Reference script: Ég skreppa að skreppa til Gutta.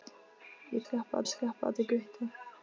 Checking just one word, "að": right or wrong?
right